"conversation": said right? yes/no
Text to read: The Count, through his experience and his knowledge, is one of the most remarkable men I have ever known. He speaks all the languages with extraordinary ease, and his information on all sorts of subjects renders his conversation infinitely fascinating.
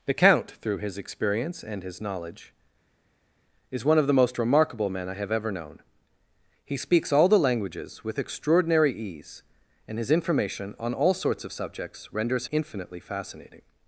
no